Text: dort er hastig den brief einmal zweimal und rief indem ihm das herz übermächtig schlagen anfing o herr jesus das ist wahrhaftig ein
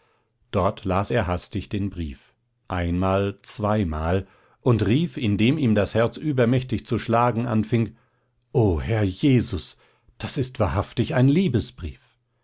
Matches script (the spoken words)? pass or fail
fail